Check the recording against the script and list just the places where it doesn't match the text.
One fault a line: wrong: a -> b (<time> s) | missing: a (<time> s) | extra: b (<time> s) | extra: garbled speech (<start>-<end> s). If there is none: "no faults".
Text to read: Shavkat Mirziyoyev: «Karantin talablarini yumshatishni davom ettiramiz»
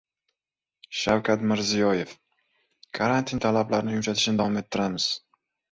no faults